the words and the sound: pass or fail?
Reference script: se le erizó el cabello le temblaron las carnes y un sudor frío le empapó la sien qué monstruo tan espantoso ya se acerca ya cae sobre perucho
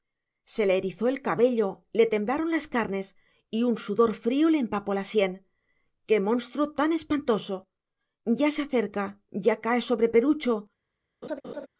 fail